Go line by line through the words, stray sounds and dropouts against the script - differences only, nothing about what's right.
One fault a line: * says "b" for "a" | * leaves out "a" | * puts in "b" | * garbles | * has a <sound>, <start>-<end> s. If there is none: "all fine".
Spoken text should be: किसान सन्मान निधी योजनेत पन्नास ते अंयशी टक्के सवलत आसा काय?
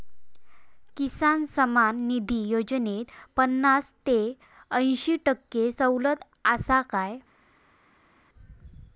all fine